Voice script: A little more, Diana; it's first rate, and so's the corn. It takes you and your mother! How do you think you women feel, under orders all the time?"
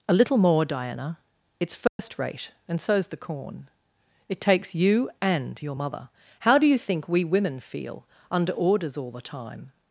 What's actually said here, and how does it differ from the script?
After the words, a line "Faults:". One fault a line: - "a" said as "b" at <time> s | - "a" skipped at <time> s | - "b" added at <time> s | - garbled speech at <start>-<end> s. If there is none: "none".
A little more, Diana; it's first rate, and so's the corn. It takes you and your mother! How do you think we women feel, under orders all the time?"
Faults:
- "you" said as "we" at 7.1 s